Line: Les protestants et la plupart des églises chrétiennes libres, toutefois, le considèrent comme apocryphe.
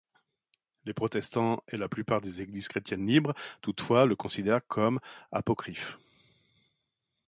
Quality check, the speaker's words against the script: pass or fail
pass